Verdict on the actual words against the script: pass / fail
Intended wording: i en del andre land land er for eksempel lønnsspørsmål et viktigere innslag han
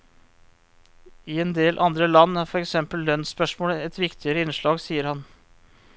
fail